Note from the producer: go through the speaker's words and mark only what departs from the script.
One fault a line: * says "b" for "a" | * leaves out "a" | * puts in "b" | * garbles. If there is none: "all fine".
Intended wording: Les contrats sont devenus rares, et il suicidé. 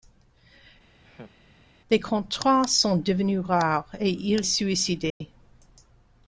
all fine